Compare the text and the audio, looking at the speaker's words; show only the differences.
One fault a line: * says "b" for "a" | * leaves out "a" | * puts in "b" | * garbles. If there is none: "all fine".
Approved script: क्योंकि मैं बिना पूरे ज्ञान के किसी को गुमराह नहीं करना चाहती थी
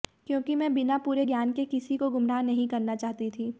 all fine